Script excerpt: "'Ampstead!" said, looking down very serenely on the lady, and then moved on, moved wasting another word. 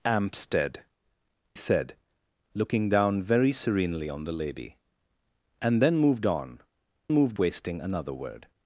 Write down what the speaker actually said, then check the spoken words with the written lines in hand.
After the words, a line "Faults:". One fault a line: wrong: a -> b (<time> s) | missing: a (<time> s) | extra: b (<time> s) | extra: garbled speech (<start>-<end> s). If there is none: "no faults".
"'Ampstead!" said, looking down very serenely on the lady, and then moved on, moved wasting another word.
Faults:
no faults